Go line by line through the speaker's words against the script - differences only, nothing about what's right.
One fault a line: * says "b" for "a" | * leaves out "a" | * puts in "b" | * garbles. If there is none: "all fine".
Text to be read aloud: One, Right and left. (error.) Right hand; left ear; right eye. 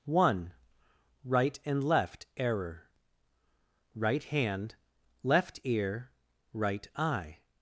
all fine